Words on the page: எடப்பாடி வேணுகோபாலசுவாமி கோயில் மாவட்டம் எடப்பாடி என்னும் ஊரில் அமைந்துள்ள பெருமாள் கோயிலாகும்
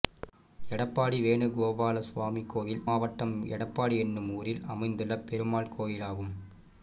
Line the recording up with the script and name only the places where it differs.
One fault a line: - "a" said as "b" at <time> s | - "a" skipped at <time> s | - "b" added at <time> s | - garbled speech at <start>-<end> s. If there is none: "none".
none